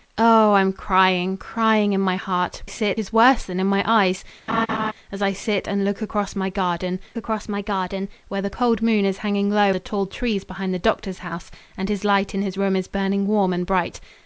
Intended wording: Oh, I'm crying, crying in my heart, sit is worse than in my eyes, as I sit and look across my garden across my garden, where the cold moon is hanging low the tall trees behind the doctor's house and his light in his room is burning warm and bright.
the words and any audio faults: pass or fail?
fail